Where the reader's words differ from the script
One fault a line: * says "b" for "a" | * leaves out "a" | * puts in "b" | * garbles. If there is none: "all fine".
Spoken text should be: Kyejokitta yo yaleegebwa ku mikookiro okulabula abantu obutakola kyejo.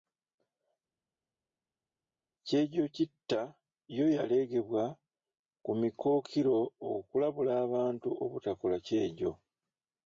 all fine